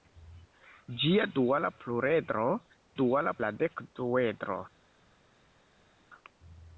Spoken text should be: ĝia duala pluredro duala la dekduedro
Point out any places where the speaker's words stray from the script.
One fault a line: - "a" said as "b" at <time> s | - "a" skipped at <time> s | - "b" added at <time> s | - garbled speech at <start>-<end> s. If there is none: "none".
none